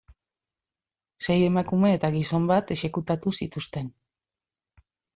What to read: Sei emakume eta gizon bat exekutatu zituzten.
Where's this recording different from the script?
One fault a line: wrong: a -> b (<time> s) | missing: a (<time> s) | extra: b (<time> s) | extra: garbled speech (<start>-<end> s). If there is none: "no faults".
no faults